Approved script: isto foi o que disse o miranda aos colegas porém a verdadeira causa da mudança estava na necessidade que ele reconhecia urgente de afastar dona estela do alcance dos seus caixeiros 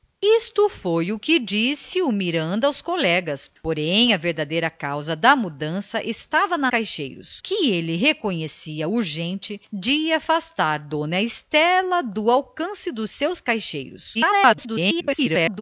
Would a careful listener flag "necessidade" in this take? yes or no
yes